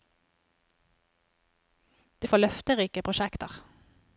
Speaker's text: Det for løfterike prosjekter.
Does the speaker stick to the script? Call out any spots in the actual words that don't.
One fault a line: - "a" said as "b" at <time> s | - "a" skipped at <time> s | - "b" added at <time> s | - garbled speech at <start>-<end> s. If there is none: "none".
none